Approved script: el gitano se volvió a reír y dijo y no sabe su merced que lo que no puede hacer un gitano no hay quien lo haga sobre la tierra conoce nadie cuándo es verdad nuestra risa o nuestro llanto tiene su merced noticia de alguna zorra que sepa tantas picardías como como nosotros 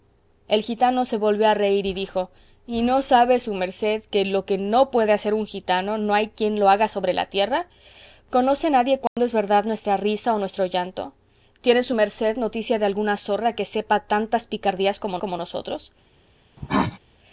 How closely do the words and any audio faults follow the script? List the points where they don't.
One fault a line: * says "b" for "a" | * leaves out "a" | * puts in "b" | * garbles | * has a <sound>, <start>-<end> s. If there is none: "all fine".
* has a dropout, 9.1-9.2 s
* has a cough, 16.6-17.0 s